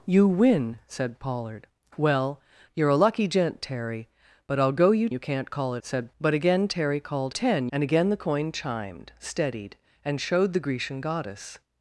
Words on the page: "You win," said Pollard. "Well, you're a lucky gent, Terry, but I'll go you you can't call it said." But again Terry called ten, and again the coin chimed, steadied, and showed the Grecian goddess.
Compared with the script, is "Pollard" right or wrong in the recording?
right